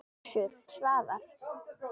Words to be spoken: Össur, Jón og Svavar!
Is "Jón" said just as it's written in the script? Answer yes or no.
no